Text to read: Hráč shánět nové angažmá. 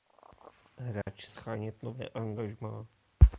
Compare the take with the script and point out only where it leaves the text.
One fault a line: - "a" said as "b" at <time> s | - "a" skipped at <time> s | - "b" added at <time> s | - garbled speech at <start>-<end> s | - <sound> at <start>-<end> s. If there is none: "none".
- dropout at 1.0-1.1 s